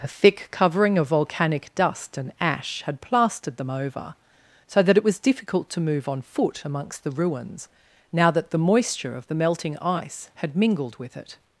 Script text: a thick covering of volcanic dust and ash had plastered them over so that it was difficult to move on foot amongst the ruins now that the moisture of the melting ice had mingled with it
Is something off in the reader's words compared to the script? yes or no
no